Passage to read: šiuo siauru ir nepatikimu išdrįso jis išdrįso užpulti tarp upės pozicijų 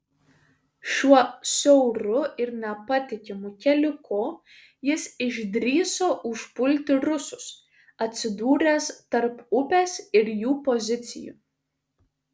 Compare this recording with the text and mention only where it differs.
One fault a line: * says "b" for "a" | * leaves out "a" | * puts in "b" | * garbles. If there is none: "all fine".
* says "keliuku" for "išdrįso"
* puts in "rusus atsidūręs"
* puts in "ir jų"